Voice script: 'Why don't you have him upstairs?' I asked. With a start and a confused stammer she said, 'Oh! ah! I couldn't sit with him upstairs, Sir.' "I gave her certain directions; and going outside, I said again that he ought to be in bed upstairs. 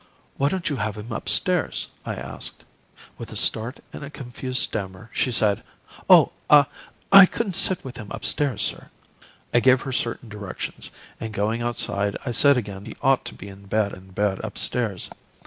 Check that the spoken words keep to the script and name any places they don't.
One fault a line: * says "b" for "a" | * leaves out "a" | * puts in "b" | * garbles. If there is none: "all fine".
* leaves out "that"
* puts in "in bed"